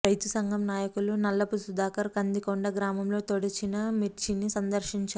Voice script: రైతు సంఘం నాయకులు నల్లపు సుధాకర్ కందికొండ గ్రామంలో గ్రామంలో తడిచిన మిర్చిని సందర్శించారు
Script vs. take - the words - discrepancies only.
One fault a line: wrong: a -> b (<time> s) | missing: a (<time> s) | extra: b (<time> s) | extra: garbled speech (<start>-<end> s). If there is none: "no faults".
missing: గ్రామంలో (3.2 s)